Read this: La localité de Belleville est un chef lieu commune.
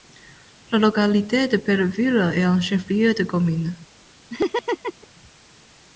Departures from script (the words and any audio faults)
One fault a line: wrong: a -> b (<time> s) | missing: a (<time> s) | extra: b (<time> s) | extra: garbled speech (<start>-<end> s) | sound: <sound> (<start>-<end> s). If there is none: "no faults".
extra: de (3.1 s)
sound: laugh (4.3-5.1 s)